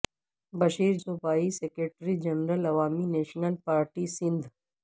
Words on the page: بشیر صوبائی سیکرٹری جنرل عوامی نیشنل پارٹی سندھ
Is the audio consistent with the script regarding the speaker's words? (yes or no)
yes